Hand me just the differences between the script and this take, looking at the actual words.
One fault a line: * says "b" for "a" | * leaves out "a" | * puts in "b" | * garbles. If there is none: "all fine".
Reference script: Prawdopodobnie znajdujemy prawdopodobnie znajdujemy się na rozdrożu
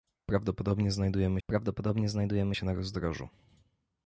all fine